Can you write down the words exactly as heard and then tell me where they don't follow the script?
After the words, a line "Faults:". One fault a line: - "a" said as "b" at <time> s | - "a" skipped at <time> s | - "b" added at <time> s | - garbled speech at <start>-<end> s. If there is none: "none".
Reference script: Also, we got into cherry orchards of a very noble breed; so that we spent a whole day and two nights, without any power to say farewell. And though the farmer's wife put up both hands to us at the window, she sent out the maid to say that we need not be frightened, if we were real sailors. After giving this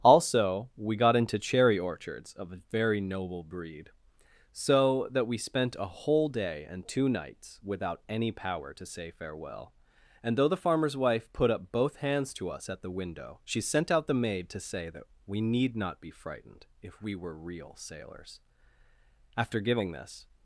Also, we got into cherry orchards of a very noble breed; so that we spent a whole day and two nights, without any power to say farewell. And though the farmer's wife put up both hands to us at the window, she sent out the maid to say that we need not be frightened, if we were real sailors. After giving this
Faults:
none